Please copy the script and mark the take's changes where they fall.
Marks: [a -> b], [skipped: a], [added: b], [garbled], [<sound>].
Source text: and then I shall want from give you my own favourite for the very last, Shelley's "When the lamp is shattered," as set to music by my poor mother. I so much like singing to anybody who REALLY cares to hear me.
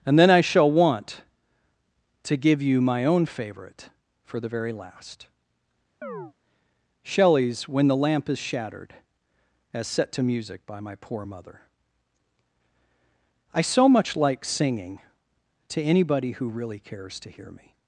and then I shall want [from -> to] give you my own favourite for the very last, [chirp] Shelley's "When the lamp is shattered," as set to music by my poor mother. I so much like singing to anybody who REALLY cares to hear me.